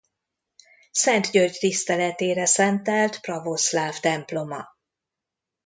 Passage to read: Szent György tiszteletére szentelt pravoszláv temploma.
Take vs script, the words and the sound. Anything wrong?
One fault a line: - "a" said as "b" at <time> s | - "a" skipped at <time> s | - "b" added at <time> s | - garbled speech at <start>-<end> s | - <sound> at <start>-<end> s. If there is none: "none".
none